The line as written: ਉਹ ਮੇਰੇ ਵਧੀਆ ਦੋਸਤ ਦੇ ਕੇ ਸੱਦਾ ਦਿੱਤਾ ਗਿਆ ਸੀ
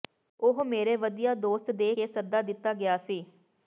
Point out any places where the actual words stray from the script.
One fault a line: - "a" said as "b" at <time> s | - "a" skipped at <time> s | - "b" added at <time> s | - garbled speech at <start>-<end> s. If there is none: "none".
none